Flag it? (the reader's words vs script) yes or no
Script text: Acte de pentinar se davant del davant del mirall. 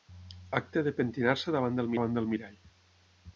no